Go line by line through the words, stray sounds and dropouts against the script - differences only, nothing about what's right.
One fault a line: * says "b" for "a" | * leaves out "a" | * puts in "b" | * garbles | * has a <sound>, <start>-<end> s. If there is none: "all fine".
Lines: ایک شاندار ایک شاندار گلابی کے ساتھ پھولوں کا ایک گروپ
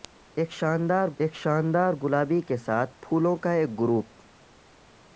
all fine